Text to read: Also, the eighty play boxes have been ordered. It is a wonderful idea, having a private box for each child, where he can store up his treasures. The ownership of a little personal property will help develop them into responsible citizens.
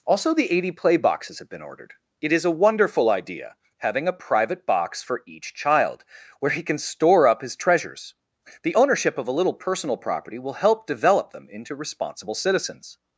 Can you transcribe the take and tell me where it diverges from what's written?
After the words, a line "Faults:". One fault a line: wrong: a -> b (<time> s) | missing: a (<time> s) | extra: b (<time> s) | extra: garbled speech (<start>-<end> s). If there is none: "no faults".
Also, the eighty play boxes have been ordered. It is a wonderful idea, having a private box for each child, where he can store up his treasures. The ownership of a little personal property will help develop them into responsible citizens.
Faults:
no faults